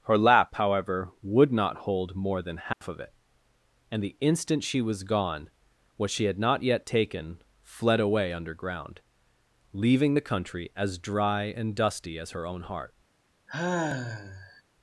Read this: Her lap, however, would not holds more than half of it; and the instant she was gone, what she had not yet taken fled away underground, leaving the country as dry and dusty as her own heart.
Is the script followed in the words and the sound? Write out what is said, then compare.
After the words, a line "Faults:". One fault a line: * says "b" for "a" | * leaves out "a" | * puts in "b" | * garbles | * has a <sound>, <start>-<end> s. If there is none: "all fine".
Her lap, however, would not hold more than half of it; and the instant she was gone, what she had not yet taken fled away underground, leaving the country as dry and dusty as her own heart.
Faults:
* says "hold" for "holds"
* has a dropout, 2.7-2.8 s
* has a sigh, 13.5-14.6 s